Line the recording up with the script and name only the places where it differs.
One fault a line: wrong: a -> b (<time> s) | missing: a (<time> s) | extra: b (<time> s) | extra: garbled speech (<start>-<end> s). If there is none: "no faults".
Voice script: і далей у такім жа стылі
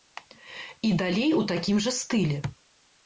no faults